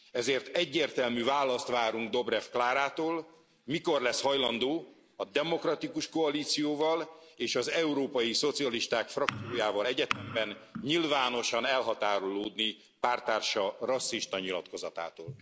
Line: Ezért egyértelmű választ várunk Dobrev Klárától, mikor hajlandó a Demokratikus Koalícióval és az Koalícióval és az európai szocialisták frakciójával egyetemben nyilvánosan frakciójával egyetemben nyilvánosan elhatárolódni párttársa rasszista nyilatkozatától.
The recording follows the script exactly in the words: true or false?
false